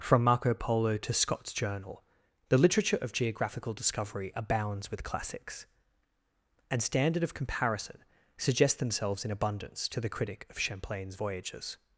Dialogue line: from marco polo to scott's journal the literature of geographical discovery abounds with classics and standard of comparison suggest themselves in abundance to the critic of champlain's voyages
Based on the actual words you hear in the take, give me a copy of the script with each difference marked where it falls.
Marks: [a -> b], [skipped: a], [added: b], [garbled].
from marco polo to scott's journal the literature of geographical discovery abounds with classics and standard of comparison suggest themselves in abundance to the critic of champlain's voyages